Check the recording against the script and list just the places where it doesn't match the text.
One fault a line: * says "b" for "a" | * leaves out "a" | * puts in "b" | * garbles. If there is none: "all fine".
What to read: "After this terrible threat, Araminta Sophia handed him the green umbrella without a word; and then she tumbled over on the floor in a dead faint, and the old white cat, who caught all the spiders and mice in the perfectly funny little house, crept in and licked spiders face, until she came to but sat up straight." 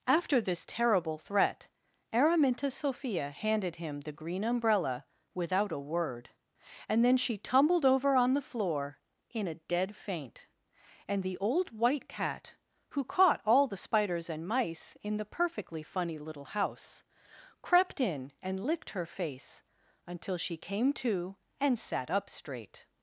* says "her" for "spiders"
* says "and" for "but"